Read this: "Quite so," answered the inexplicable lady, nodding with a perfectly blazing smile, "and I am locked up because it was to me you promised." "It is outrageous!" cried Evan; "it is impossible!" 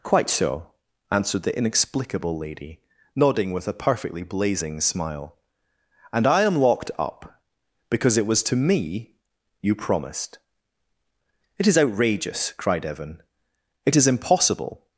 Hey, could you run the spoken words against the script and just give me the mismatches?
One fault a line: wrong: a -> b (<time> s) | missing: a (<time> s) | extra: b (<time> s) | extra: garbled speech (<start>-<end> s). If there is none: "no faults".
no faults